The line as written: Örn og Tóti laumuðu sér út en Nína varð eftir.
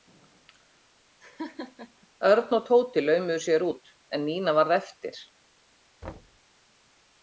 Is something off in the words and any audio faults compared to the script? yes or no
yes